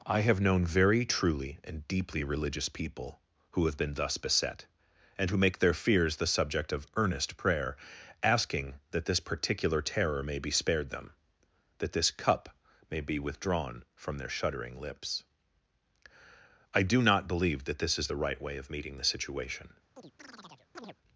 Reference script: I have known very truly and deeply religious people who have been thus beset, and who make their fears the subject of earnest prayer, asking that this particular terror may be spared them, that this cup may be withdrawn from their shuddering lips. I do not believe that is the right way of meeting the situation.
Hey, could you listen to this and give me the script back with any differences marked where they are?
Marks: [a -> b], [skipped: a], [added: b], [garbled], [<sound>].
I have known very truly and deeply religious people who have been thus beset, and who make their fears the subject of earnest prayer, asking that this particular terror may be spared them, that this cup may be withdrawn from their shuddering lips. I do not believe that [added: this] is the right way of meeting the situation. [chirp]